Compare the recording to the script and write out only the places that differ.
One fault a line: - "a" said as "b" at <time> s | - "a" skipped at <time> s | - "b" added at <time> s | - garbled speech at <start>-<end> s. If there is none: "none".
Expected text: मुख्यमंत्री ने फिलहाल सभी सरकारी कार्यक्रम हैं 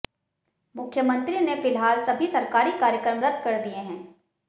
- "रद्द कर दिए" added at 3.2 s